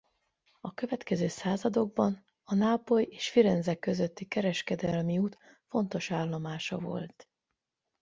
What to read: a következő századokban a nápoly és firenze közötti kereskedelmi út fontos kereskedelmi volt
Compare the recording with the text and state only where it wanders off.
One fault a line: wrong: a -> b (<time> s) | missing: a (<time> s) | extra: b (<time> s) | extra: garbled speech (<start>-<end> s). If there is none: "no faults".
wrong: kereskedelmi -> állomása (6.1 s)